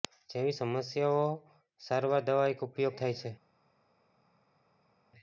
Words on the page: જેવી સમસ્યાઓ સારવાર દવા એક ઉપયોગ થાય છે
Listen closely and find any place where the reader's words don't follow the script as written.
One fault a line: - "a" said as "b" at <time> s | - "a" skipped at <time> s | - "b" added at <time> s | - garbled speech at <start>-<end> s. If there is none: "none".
none